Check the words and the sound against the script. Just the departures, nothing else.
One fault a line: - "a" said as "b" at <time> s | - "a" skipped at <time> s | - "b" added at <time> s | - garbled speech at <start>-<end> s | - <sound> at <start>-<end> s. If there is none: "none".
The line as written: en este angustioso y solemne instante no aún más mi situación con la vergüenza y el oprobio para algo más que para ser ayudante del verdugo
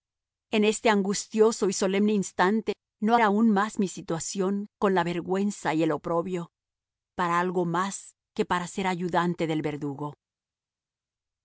none